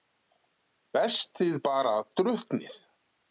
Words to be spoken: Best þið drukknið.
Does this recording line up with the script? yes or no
no